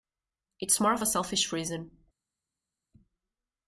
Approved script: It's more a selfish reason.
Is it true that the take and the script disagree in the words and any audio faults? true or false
true